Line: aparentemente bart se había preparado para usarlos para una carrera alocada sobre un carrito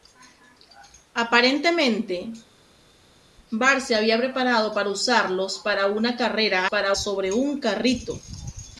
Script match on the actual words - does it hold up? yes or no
no